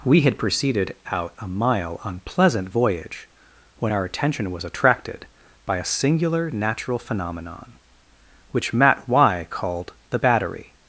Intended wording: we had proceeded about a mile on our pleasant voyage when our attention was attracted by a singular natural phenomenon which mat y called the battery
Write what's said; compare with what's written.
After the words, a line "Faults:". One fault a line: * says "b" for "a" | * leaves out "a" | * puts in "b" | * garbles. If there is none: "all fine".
we had proceeded out a mile on pleasant voyage when our attention was attracted by a singular natural phenomenon which mat y called the battery
Faults:
* says "out" for "about"
* leaves out "our"